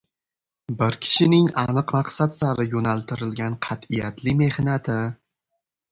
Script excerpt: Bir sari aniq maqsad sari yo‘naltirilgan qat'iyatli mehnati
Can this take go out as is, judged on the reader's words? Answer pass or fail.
fail